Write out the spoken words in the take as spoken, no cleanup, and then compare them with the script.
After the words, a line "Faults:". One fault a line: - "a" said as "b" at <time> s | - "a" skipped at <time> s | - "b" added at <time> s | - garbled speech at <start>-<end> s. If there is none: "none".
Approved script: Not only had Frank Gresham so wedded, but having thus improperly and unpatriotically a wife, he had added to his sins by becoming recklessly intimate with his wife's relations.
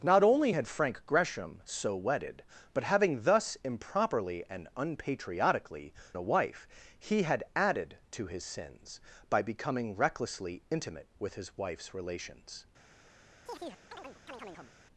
Not only had Frank Gresham so wedded, but having thus improperly and unpatriotically a wife, he had added to his sins by becoming recklessly intimate with his wife's relations.
Faults:
none